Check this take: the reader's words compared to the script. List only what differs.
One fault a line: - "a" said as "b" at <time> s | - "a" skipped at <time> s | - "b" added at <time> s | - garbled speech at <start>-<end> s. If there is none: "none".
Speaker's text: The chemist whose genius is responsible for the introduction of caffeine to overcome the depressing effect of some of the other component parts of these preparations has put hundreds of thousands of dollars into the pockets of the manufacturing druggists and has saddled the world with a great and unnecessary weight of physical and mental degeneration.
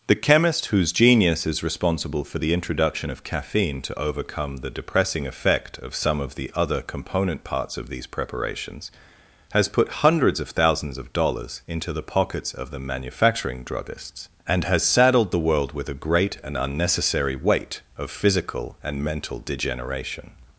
none